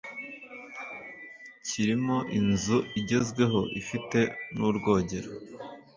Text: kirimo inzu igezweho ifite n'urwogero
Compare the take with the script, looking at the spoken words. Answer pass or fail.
pass